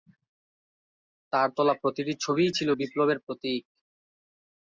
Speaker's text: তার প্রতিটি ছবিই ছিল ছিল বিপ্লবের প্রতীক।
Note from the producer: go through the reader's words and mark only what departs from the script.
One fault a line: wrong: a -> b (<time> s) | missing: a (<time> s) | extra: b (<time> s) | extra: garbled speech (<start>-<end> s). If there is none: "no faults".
extra: তোলা (1.6 s)
missing: ছিল (2.7 s)